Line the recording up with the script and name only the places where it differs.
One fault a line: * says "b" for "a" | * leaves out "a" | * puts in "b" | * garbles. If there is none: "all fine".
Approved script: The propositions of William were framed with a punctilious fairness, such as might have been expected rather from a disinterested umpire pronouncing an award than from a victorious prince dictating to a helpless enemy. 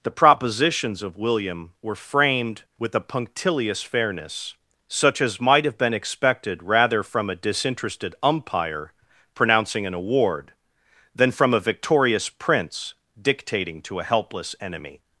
all fine